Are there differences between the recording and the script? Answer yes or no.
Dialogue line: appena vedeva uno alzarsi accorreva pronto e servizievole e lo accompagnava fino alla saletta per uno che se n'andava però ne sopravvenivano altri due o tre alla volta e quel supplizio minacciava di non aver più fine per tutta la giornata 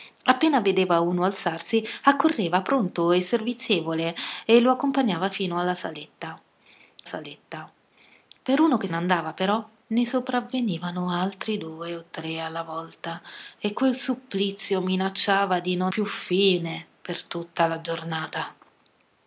yes